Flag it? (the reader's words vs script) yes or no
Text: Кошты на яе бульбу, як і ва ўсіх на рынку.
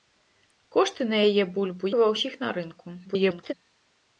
yes